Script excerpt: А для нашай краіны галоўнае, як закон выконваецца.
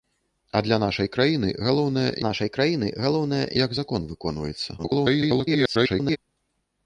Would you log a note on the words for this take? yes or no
yes